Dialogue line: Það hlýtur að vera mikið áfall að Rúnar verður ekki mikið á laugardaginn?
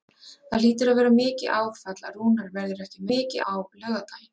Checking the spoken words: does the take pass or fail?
pass